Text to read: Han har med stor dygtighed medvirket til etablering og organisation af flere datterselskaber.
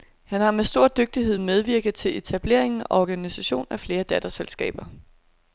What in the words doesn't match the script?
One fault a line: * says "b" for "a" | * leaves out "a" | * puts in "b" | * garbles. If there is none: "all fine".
all fine